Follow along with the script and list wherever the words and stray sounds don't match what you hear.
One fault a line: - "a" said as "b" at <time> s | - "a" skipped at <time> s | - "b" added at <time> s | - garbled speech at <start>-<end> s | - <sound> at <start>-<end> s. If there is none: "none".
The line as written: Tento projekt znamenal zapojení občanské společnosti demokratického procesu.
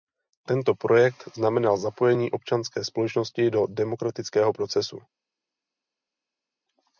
- "do" added at 3.5 s